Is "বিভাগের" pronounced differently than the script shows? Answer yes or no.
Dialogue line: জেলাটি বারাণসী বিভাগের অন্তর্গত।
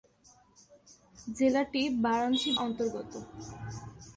yes